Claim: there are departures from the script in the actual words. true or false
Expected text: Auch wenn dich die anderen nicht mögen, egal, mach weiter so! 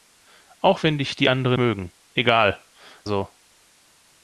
true